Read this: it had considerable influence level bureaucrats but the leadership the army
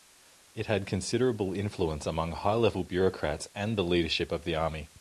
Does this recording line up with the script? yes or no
no